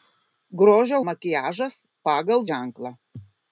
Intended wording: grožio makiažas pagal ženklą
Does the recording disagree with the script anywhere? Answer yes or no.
no